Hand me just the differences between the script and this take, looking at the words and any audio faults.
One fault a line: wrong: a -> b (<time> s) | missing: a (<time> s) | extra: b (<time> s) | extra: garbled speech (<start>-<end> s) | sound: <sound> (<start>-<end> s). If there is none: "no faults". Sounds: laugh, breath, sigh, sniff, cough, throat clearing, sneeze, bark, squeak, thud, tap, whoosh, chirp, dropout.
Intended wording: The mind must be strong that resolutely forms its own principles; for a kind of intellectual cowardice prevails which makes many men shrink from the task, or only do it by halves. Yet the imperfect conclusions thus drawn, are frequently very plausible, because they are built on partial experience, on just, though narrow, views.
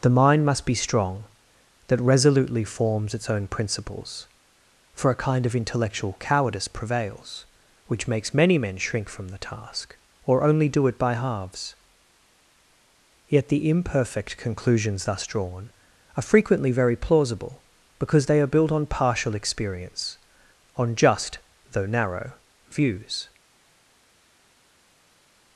no faults